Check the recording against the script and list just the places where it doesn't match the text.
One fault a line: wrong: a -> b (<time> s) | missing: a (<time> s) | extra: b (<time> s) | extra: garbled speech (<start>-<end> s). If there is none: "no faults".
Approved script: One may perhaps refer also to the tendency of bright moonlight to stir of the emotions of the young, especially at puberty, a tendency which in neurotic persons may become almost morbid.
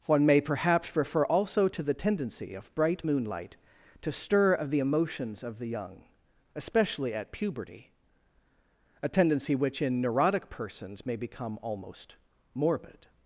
no faults